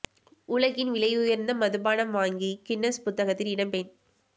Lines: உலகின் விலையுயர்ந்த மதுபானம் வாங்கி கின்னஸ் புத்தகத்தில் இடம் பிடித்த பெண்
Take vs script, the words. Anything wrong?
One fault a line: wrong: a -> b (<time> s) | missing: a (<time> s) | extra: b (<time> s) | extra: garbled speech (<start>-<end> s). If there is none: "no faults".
missing: பிடித்த (3.7 s)